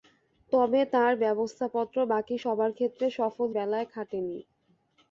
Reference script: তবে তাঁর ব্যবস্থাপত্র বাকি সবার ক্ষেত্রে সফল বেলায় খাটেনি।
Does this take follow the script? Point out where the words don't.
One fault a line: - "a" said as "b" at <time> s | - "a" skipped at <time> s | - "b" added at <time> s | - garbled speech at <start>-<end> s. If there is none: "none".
none